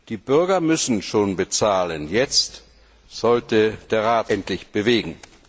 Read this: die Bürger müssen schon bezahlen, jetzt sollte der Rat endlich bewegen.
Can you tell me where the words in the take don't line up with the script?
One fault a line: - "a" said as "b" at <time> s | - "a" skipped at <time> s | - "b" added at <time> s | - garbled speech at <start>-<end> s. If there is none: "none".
none